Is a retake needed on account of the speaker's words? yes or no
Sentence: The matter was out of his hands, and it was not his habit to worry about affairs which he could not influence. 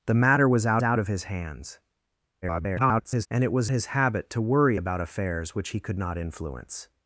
yes